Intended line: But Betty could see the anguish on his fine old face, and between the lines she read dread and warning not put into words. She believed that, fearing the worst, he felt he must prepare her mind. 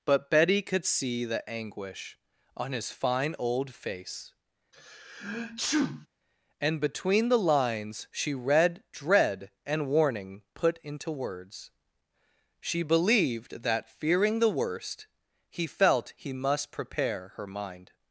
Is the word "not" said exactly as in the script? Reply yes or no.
no